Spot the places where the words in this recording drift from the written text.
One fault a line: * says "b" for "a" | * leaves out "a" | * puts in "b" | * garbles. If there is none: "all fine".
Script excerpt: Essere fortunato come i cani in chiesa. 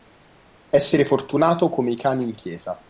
all fine